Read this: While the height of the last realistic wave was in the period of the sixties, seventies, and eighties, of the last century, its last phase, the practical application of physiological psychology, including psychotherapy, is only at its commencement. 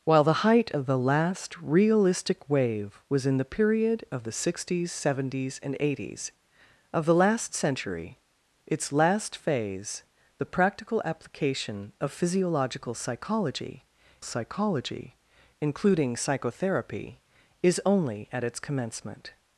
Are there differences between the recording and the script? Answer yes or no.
yes